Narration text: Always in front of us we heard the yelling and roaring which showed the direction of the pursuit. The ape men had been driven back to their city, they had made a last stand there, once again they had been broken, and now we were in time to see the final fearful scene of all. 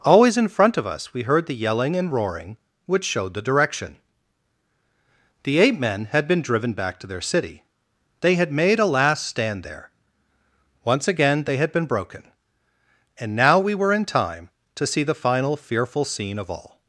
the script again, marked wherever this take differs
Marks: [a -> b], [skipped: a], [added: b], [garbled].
Always in front of us we heard the yelling and roaring which showed the direction [skipped: of the pursuit.] The ape men had been driven back to their city, they had made a last stand there, once again they had been broken, and now we were in time to see the final fearful scene of all.